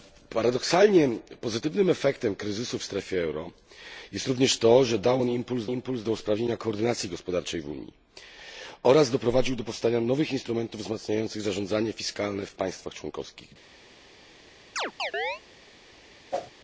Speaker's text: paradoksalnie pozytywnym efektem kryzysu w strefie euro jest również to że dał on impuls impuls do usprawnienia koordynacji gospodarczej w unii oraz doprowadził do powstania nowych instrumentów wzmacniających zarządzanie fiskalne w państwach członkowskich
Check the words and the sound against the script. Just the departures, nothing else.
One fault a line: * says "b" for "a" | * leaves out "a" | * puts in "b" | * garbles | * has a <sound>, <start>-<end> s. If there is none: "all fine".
* has a chirp, 14.8-15.4 s
* has a whoosh, 16.3-16.5 s